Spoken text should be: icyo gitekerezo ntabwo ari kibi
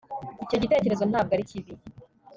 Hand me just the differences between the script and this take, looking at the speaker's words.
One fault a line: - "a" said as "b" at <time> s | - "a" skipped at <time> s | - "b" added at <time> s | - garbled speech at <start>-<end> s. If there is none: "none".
none